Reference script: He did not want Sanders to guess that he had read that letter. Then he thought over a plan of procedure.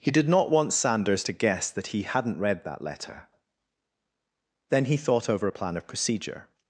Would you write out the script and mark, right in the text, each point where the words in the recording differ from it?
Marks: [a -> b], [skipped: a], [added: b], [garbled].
He did not want Sanders to guess that he [had -> hadn't] read that letter. Then he thought over a plan of procedure.